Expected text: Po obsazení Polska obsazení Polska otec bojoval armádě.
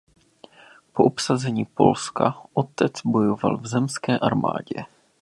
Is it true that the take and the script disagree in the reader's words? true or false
true